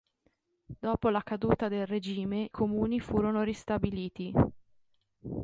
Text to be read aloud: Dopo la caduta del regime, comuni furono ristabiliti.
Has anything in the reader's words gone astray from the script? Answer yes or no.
no